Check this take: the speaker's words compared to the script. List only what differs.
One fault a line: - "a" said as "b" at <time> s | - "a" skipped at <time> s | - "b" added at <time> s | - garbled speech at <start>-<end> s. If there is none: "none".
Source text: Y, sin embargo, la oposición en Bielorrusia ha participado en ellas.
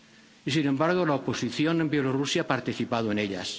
none